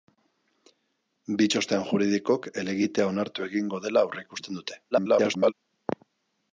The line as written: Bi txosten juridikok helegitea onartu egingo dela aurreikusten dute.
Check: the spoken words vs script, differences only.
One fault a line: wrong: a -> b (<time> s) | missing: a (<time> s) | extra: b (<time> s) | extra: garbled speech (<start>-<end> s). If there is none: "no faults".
extra: garbled speech (4.9-5.5 s)